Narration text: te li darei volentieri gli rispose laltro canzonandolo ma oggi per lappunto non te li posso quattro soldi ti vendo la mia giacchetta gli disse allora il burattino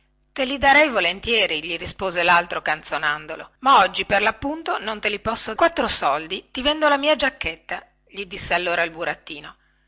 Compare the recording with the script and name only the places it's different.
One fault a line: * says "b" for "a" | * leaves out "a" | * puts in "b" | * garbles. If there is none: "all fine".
all fine